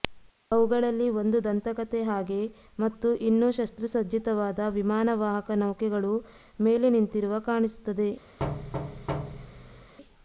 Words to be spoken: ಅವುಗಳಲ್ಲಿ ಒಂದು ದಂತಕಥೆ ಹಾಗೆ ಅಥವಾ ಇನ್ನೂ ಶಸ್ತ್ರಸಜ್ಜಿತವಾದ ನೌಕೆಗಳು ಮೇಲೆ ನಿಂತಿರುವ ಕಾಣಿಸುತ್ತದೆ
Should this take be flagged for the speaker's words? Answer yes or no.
yes